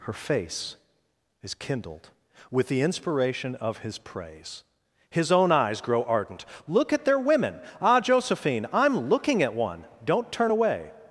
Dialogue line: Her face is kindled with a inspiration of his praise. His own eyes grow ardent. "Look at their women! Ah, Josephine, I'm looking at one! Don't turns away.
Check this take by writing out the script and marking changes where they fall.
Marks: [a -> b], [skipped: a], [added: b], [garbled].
Her face is kindled with [a -> the] inspiration of his praise. His own eyes grow ardent. "Look at their women! Ah, Josephine, I'm looking at one! Don't [turns -> turn] away.